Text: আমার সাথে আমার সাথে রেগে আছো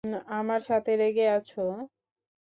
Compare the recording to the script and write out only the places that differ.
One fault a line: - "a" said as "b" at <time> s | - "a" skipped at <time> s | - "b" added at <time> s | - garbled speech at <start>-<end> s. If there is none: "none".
- "আমার সাথে" skipped at 0.9 s